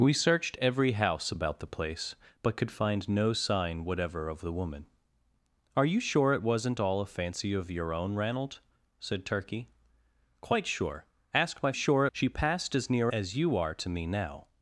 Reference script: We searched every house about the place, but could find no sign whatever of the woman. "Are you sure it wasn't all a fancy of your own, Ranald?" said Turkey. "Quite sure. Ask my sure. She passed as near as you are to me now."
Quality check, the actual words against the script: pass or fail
pass